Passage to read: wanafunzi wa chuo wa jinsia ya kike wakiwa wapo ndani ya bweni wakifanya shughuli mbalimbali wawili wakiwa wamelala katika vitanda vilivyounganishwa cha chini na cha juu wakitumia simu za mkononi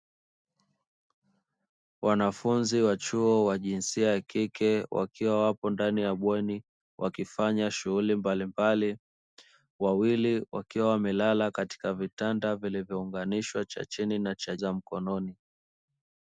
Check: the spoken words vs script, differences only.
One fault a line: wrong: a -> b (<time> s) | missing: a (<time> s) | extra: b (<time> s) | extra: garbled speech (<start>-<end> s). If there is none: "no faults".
missing: juu wakitumia simu (14.6 s)